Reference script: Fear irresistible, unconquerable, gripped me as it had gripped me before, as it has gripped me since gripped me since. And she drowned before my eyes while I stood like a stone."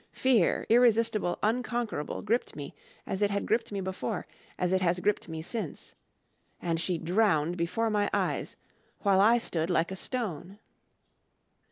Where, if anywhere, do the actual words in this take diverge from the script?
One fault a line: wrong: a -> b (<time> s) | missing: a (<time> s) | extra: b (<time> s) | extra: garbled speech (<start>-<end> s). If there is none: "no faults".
missing: gripped me since (5.9 s)